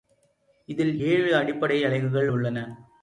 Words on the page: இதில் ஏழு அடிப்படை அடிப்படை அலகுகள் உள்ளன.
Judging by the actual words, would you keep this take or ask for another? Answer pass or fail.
fail